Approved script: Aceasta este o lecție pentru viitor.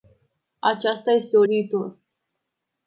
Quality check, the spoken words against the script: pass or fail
fail